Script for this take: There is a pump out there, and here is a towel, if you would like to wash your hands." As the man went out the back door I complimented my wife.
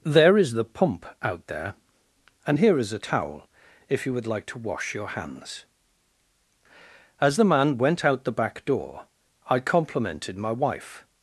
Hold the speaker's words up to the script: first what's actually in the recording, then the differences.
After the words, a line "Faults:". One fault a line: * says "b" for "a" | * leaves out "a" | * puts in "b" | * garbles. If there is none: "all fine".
There is the pump out there, and here is a towel, if you would like to wash your hands." As the man went out the back door I complimented my wife.
Faults:
* says "the" for "a"